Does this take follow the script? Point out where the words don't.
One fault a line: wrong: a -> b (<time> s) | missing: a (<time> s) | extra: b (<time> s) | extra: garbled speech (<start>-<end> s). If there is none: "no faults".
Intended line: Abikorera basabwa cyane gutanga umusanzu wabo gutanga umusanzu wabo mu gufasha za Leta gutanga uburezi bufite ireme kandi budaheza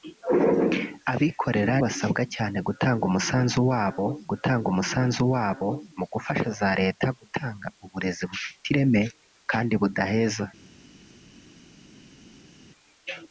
no faults